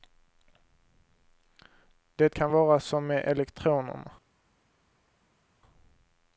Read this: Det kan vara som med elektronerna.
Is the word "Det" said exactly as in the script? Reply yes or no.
yes